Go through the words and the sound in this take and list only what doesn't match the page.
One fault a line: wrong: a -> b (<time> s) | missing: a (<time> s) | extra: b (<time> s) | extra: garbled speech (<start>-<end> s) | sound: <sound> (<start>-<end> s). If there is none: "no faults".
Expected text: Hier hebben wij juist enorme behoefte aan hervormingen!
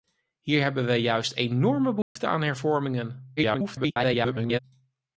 sound: dropout (2.0-2.2 s)
extra: garbled speech (3.4-4.6 s)